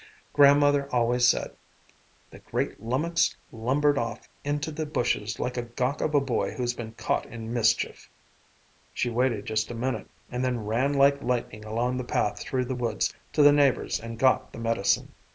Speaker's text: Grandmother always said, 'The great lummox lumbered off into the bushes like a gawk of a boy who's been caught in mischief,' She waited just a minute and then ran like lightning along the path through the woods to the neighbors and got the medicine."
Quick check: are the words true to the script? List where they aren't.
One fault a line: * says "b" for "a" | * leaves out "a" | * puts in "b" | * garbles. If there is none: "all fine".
all fine